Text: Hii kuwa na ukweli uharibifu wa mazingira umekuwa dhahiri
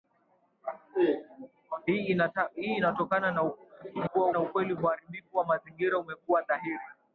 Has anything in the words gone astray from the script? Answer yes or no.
no